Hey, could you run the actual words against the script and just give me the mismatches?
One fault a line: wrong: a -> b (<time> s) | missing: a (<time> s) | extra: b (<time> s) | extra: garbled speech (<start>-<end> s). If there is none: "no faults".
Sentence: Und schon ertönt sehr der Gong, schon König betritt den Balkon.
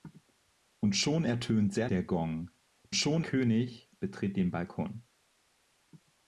no faults